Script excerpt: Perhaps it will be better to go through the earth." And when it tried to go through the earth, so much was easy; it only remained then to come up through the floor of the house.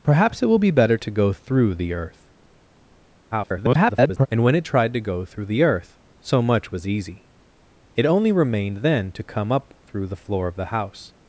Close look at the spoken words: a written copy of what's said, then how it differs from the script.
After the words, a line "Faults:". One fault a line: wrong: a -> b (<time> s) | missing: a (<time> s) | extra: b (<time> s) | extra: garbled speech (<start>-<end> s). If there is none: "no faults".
Perhaps it will be better to go through the earth." [garbled] And when it tried to go through the earth, so much was easy; it only remained then to come up through the floor of the house.
Faults:
extra: garbled speech (3.3-4.3 s)